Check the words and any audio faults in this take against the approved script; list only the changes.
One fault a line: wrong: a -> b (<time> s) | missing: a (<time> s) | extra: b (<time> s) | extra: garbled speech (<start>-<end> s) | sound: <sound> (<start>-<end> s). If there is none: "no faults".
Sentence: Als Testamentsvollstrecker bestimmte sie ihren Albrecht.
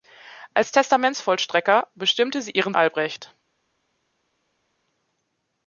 no faults